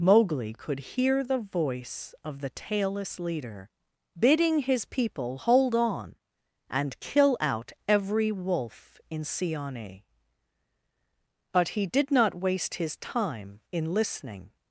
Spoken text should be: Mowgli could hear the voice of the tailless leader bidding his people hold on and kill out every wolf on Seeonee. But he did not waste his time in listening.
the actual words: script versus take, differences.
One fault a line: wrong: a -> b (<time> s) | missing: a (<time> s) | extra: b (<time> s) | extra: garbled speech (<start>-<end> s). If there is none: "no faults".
wrong: on -> in (9.1 s)